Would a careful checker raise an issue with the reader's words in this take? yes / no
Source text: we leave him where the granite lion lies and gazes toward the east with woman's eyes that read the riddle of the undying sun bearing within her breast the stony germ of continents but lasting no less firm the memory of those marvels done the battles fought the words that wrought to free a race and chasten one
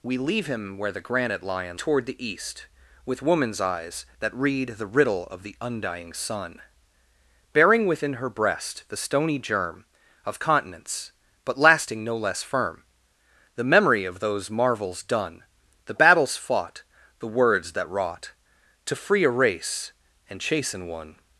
yes